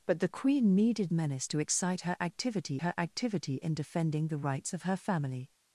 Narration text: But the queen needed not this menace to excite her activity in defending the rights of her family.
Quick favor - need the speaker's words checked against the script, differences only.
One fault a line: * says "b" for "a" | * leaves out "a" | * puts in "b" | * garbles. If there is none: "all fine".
* leaves out "not this"
* puts in "her activity"